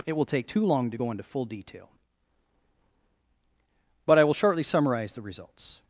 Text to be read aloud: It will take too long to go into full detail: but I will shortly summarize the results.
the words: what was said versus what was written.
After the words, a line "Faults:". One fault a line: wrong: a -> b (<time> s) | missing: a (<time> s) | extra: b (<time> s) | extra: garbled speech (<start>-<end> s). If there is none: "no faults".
It will take too long to go into full detail: but I will shortly summarize the results.
Faults:
no faults